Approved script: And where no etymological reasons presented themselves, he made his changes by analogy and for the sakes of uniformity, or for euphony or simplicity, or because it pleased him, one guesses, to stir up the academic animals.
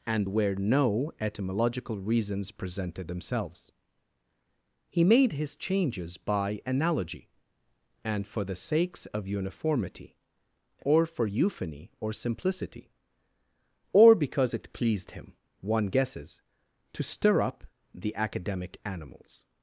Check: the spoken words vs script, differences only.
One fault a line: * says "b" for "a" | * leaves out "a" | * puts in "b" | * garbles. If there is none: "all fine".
all fine